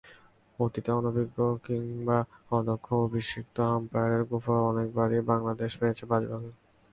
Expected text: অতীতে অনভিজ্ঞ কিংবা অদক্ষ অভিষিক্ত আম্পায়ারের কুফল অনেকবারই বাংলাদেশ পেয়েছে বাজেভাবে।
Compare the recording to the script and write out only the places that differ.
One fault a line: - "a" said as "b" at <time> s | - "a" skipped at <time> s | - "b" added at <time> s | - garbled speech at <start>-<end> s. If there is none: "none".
none